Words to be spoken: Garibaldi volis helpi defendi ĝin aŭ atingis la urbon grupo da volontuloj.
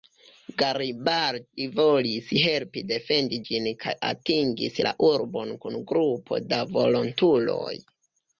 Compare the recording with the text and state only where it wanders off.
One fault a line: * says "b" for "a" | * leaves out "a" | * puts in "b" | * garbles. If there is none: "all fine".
* says "kaj" for "aŭ"
* puts in "kun"